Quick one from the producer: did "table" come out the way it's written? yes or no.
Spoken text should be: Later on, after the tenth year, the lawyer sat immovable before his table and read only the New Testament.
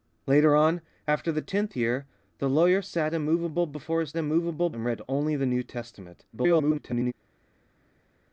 no